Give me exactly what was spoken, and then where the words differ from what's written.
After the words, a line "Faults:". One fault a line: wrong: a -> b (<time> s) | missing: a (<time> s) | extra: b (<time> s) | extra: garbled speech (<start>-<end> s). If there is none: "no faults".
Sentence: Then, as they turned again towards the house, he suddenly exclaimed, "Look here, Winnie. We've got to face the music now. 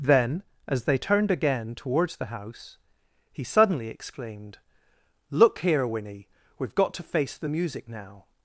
Then, as they turned again towards the house, he suddenly exclaimed, "Look here, Winnie. We've got to face the music now.
Faults:
no faults